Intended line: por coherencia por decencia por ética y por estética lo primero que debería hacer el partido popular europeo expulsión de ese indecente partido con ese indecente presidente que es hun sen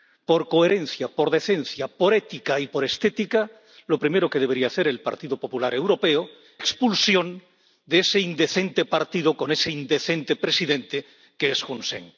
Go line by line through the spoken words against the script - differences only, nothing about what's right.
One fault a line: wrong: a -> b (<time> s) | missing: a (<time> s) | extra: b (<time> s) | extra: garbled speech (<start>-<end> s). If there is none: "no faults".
no faults